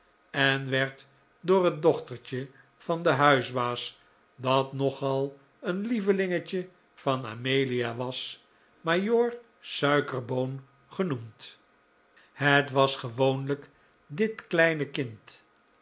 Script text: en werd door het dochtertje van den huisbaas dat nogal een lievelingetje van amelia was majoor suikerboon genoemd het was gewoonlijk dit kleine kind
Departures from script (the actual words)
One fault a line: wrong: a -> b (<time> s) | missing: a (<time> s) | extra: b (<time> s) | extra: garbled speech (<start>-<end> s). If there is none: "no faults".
no faults